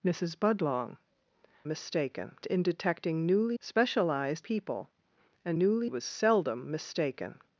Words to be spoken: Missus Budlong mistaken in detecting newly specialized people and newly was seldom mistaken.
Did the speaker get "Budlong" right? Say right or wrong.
right